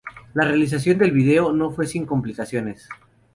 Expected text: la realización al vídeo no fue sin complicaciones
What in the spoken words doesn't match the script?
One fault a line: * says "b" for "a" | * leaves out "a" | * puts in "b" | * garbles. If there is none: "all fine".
* says "del" for "al"